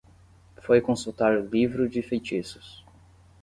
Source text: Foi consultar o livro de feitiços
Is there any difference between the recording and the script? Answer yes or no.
no